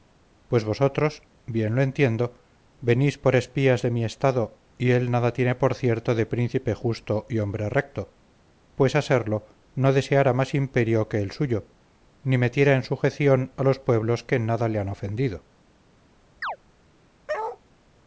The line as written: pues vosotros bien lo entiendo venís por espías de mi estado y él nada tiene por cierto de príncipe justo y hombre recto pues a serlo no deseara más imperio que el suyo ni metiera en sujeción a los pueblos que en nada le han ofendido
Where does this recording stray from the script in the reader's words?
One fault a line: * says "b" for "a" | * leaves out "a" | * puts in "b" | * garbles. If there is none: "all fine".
all fine